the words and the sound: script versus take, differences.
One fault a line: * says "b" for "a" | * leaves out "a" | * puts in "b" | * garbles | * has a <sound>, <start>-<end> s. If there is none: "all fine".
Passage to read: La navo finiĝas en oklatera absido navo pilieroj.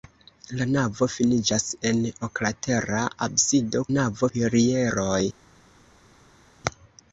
all fine